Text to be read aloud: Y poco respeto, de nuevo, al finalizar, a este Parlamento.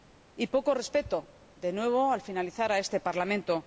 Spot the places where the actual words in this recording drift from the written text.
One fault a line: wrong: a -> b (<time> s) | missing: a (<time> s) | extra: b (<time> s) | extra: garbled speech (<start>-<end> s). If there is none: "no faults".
no faults